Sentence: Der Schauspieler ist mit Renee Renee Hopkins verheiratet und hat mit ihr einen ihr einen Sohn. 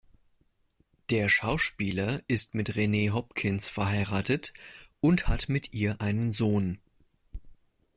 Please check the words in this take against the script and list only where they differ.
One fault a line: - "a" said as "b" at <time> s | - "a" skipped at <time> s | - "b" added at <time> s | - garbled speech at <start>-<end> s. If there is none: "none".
- "Renee" skipped at 3.1 s
- "ihr einen" skipped at 6.3 s